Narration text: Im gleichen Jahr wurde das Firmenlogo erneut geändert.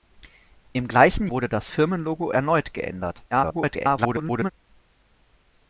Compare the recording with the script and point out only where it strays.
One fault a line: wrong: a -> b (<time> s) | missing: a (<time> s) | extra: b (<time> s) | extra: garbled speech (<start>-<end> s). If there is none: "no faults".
missing: Jahr (1.3 s)
extra: garbled speech (3.3-4.5 s)